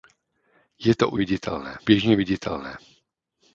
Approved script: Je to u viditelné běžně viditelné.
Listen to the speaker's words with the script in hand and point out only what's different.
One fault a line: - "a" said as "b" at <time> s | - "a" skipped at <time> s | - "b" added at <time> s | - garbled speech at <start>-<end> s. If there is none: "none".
none